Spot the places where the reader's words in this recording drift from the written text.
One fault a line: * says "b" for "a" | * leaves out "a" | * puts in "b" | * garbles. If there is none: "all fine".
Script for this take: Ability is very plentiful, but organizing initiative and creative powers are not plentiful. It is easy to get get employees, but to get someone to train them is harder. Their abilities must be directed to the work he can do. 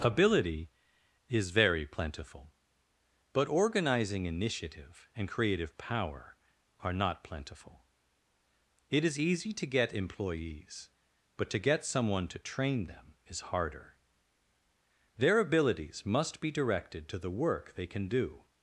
* says "power" for "powers"
* leaves out "get"
* says "they" for "he"